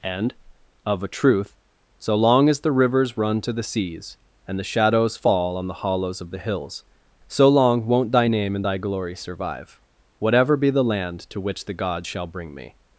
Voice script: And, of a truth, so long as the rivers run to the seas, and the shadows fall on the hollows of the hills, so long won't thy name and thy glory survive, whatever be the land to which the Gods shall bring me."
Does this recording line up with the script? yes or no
yes